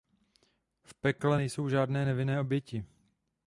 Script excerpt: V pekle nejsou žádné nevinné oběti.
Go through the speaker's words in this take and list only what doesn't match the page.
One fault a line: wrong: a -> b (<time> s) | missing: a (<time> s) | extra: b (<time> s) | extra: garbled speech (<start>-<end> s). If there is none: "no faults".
no faults